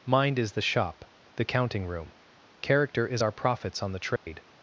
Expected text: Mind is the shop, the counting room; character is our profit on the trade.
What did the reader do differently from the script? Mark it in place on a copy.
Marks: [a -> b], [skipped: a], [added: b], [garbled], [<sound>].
Mind is the shop, the counting room; character is our [profit -> profits] on the trade. [dropout]